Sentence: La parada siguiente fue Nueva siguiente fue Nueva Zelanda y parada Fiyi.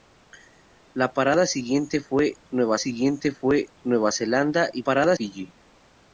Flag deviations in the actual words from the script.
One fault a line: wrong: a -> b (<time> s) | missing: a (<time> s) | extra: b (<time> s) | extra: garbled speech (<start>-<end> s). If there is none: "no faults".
no faults